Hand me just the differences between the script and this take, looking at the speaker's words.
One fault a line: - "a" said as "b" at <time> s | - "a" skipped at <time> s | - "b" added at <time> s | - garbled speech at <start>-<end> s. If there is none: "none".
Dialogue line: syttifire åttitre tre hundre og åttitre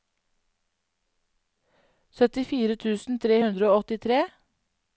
- "åttitre" said as "tusen" at 2.9 s